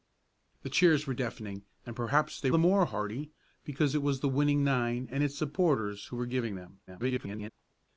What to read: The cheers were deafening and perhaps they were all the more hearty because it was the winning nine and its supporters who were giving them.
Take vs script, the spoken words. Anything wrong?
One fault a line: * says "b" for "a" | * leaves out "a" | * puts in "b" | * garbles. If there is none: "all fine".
* leaves out "were all"
* garbles